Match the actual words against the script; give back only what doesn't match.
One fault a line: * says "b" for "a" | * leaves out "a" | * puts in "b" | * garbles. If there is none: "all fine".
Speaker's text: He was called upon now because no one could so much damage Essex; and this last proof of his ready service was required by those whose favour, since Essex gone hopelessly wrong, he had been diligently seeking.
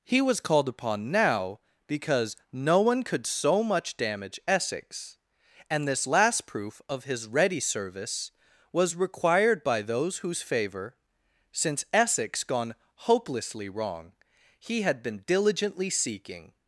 all fine